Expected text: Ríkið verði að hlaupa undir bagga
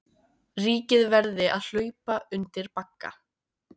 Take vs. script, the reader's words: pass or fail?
pass